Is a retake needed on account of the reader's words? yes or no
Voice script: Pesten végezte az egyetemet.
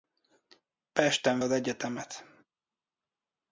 yes